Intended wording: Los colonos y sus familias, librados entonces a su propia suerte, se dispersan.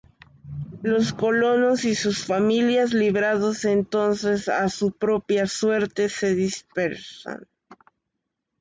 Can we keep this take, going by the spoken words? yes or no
yes